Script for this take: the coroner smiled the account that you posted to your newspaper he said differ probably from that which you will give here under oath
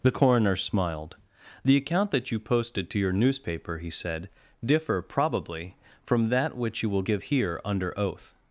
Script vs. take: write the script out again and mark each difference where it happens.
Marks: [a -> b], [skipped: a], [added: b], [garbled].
the coroner smiled the account that you posted to your newspaper he said differ probably from that which you will give here under oath